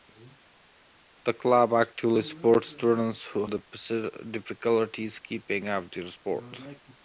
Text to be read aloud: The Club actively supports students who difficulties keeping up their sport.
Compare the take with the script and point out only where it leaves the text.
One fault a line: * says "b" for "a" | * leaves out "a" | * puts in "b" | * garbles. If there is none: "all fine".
all fine